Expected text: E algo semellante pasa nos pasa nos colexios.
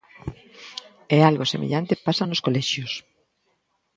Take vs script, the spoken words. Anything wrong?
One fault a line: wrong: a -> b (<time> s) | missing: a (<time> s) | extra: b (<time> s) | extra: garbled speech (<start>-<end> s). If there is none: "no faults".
missing: pasa nos (2.4 s)